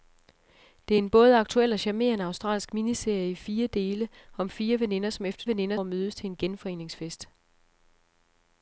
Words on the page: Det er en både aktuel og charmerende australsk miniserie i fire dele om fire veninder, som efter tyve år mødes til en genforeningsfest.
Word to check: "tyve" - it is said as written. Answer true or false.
false